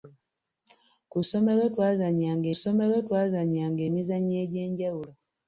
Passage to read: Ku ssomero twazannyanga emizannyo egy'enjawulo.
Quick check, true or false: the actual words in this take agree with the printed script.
false